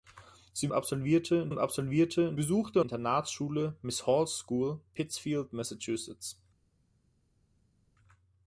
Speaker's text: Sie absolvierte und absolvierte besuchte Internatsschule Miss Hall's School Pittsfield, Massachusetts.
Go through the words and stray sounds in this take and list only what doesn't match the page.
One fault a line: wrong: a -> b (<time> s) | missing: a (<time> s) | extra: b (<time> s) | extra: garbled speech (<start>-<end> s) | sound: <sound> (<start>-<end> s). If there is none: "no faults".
no faults